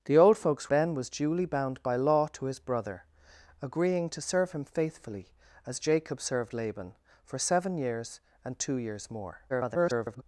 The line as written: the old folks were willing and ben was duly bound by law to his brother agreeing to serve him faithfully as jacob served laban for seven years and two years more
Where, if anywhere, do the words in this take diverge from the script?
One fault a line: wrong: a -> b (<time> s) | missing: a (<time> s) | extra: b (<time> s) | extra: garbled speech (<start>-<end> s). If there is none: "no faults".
missing: were willing and (0.7 s)
extra: garbled speech (9.5-10.2 s)